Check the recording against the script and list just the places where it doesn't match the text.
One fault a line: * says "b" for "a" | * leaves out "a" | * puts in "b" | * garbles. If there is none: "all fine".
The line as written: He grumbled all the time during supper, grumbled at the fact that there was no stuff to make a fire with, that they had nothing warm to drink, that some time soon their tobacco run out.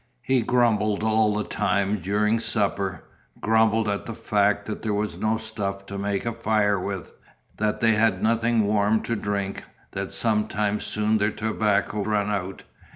all fine